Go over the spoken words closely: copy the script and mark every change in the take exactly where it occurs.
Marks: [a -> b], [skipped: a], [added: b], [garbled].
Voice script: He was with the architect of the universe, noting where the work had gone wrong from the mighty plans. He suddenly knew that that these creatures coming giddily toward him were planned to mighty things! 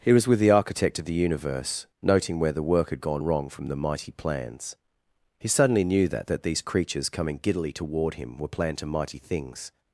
He was with the architect of the universe, noting where the work had gone wrong from the mighty plans. He suddenly knew that that these creatures coming giddily toward him were planned to mighty things!